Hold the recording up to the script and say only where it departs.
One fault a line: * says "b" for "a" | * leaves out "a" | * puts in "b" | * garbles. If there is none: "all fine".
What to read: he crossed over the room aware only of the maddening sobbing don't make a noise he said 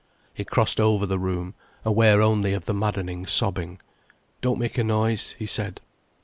all fine